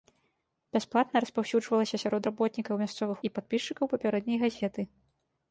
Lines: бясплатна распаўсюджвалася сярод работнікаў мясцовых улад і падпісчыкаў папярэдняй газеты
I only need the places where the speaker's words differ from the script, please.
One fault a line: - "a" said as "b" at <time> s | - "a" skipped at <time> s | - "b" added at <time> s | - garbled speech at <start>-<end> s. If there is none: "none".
- "улад" skipped at 3.2 s